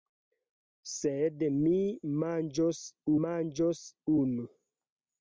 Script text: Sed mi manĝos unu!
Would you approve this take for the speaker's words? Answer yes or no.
no